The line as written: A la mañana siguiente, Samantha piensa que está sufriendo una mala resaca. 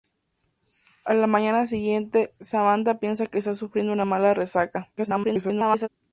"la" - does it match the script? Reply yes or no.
yes